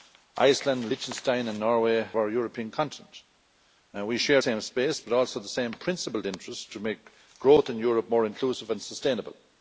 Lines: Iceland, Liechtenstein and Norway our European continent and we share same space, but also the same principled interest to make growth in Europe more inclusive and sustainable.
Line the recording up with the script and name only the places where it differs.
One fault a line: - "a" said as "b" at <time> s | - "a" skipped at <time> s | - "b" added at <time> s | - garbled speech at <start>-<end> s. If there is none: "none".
none